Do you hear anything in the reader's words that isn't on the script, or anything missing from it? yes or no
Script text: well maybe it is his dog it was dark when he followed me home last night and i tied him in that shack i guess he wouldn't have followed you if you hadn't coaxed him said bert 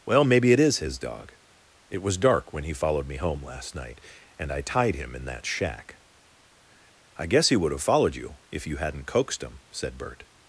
yes